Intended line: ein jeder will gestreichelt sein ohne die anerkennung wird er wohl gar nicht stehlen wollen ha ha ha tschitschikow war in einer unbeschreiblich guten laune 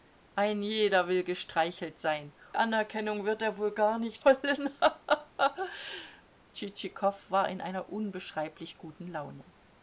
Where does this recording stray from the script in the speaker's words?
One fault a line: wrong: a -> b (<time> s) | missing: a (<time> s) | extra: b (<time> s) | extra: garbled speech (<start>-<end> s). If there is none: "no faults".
missing: ohne die (2.3 s)
missing: stehlen (4.2 s)